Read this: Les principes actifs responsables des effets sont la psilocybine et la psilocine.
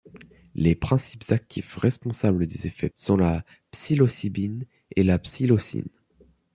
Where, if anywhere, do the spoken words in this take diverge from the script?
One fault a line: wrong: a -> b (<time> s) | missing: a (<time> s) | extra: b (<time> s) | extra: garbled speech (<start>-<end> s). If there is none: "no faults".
no faults